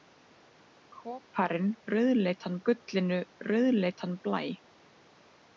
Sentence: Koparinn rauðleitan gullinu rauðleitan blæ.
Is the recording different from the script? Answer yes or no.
no